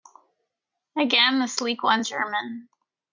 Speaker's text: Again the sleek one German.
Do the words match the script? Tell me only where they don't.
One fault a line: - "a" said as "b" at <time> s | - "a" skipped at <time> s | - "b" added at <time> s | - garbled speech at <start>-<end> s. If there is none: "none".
none